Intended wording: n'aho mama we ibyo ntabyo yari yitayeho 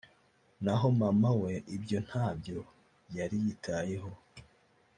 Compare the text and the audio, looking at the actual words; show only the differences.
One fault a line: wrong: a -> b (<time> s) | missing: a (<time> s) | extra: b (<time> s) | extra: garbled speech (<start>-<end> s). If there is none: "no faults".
no faults